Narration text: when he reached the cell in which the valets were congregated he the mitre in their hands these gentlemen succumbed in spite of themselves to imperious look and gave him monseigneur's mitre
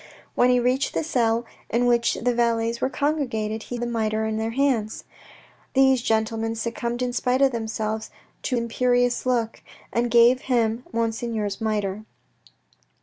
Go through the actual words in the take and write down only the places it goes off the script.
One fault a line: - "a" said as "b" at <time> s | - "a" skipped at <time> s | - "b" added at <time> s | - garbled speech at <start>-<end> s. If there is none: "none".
none